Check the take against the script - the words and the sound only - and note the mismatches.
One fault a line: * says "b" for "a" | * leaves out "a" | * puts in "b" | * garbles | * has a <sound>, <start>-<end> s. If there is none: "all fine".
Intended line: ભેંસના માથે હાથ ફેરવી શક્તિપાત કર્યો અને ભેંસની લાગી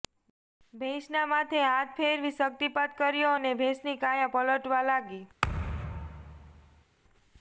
* puts in "કાયા પલટવા"
* has a thud, 5.4-6.8 s